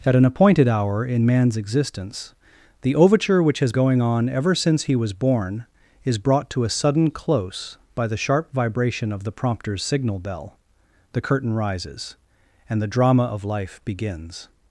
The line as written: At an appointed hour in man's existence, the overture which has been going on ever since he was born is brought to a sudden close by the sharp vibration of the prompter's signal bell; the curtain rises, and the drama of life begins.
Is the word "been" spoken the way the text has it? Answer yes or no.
no